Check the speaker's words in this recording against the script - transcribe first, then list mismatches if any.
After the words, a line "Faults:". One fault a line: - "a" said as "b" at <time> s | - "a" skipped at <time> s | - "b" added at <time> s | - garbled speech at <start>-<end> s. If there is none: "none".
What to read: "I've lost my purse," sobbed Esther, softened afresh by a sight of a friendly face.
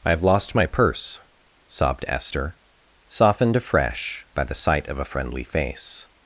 "I've lost my purse," sobbed Esther, softened afresh by the sight of a friendly face.
Faults:
- "a" said as "the" at 4.4 s